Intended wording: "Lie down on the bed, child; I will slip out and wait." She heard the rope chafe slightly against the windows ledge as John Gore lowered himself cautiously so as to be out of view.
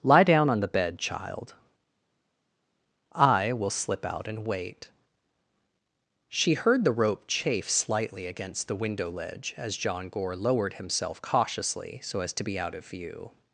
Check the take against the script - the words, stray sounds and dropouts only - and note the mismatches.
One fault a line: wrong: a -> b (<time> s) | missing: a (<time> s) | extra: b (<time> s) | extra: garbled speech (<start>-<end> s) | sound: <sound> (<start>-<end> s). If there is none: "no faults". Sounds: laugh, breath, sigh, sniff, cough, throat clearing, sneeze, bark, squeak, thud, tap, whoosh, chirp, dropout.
wrong: windows -> window (8.8 s)